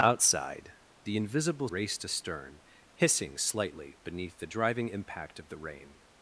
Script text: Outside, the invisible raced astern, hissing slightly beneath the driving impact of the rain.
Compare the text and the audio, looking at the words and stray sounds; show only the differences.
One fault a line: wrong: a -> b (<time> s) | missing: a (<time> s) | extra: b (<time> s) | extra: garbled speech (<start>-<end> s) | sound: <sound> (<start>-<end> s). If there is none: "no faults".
no faults